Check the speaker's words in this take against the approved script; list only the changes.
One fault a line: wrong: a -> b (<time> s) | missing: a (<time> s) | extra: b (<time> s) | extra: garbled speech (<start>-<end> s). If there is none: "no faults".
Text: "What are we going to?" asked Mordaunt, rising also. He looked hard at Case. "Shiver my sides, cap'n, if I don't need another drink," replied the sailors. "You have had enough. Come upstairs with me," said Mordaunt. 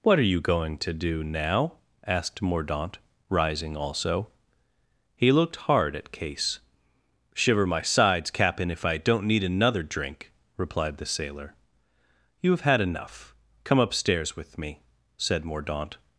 wrong: we -> you (0.2 s)
extra: do now (0.9 s)
wrong: sailors -> sailor (11.1 s)